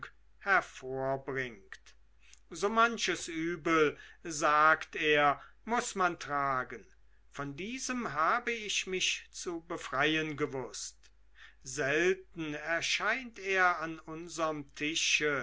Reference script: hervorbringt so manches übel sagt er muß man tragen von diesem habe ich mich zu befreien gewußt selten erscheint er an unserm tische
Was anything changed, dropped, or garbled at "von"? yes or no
no